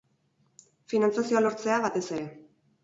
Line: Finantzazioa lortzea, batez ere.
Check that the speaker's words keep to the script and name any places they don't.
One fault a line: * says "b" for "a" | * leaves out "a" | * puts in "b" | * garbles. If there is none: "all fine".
all fine